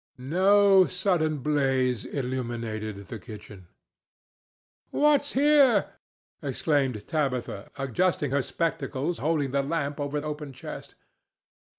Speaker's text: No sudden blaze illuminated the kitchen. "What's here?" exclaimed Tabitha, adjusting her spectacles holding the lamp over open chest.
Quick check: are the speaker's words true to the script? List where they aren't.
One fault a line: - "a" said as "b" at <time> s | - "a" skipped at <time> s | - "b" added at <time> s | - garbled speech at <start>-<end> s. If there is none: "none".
none